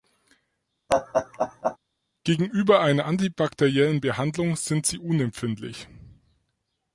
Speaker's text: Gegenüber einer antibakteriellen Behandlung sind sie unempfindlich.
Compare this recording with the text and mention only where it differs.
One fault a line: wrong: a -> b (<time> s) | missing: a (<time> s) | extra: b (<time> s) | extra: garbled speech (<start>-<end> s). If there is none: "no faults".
no faults